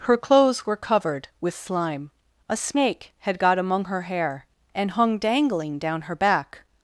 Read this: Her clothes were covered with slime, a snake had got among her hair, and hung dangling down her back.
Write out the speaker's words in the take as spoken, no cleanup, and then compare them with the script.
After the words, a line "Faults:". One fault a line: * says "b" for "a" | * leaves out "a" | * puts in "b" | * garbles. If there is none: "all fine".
Her clothes were covered with slime, a snake had got among her hair, and hung dangling down her back.
Faults:
all fine